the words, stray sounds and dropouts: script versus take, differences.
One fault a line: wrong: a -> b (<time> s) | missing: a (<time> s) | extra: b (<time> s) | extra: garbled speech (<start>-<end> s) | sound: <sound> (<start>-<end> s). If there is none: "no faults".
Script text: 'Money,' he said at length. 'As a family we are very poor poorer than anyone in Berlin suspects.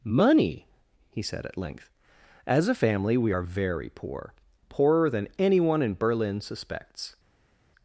no faults